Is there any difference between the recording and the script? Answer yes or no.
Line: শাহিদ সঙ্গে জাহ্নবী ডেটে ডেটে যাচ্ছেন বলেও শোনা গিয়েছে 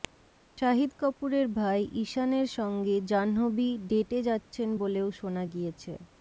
yes